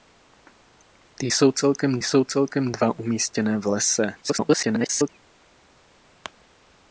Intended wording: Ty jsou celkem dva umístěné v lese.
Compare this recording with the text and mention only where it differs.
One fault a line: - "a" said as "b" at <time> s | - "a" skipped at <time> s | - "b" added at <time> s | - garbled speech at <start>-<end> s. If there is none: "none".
- "jsou celkem" added at 2.0 s
- garbled speech at 4.2-5.1 s